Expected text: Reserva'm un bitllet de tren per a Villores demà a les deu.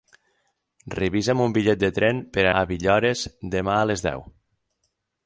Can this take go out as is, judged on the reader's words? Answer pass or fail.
pass